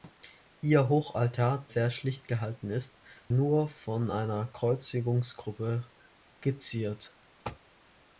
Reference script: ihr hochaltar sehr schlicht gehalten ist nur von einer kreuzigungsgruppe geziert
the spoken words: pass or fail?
pass